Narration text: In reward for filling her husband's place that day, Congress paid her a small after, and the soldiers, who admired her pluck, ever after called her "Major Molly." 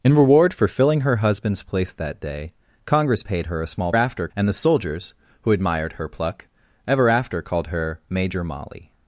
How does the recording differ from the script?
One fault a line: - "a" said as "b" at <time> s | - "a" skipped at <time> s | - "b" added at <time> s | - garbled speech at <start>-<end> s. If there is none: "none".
none